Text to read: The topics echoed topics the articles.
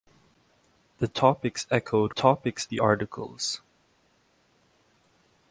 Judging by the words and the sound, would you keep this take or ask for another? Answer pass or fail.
pass